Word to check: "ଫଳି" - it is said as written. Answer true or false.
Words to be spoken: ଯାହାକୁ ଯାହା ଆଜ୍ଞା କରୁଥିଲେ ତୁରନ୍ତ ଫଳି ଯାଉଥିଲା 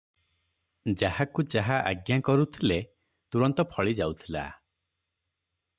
true